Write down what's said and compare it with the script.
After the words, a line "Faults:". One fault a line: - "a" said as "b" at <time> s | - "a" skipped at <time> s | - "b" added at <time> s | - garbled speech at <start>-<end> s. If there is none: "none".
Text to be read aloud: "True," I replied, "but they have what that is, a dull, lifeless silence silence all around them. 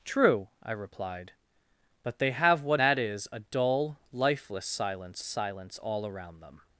"True," I replied, "but they have what that is, a dull, lifeless silence silence all around them.
Faults:
none